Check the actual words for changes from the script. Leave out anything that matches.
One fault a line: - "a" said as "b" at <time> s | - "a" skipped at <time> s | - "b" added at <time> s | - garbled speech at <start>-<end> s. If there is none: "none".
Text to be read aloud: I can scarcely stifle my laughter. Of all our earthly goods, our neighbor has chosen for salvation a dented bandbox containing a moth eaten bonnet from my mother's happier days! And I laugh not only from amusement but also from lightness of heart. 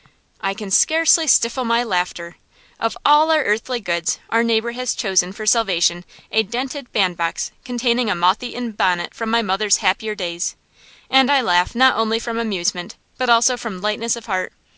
none